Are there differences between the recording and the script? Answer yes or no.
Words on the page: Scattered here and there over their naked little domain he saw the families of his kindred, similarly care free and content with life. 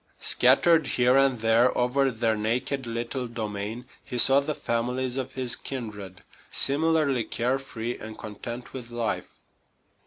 no